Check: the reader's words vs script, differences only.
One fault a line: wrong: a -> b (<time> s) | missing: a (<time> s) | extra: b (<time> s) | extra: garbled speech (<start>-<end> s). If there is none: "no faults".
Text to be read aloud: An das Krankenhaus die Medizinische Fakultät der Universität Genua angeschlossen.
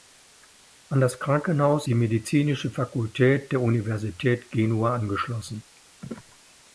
no faults